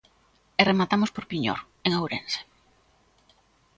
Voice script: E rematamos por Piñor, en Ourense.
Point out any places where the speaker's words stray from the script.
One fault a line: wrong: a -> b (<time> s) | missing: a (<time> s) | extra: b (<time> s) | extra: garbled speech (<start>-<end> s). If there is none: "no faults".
no faults